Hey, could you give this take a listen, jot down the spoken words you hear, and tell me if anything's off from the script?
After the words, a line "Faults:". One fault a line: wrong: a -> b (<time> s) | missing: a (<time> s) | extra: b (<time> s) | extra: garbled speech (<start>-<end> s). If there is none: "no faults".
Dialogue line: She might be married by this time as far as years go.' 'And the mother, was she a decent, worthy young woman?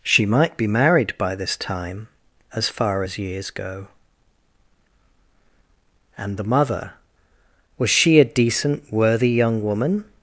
She might be married by this time as far as years go.' 'And the mother, was she a decent, worthy young woman?
Faults:
no faults